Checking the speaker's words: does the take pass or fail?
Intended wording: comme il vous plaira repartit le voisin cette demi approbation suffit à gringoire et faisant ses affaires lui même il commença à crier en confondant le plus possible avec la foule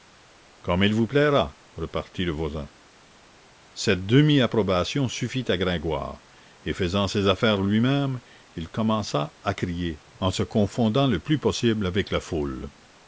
fail